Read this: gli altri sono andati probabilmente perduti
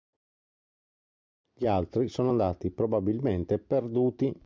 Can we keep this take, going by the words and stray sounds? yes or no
yes